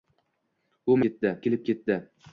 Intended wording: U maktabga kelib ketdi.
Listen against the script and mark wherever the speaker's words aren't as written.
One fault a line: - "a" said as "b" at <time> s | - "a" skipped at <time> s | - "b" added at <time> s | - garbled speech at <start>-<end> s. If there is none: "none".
- "maktabga" said as "ketdi" at 1.0 s